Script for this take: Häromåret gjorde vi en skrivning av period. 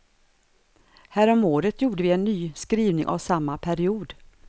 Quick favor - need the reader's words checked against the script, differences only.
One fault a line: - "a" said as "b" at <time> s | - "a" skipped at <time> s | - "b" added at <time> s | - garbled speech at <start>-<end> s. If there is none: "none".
- "ny" added at 2.2 s
- "samma" added at 3.2 s